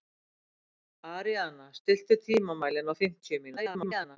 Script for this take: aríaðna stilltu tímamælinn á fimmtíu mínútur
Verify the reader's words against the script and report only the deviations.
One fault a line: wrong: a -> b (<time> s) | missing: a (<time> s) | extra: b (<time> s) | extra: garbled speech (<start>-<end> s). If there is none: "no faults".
extra: garbled speech (3.6-4.2 s)